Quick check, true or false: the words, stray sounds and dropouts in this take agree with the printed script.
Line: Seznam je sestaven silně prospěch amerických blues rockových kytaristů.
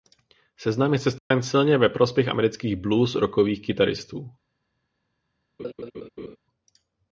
false